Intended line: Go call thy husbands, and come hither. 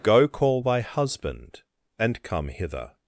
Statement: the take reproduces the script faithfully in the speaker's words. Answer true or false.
false